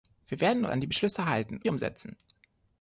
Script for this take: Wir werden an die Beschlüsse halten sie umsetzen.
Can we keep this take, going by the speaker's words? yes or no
yes